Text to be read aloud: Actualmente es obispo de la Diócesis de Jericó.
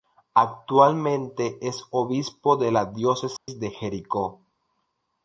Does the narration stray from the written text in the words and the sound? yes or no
yes